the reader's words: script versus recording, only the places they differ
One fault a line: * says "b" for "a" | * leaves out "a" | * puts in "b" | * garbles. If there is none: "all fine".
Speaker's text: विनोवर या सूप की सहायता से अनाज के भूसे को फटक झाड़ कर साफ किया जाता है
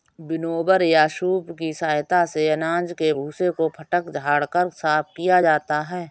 all fine